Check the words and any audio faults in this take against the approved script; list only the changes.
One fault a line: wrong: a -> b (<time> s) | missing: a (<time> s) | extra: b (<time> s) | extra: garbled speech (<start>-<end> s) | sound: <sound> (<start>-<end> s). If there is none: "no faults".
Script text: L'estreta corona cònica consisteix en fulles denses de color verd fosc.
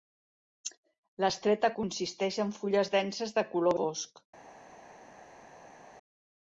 missing: corona cònica (1.7 s)
missing: verd (3.8 s)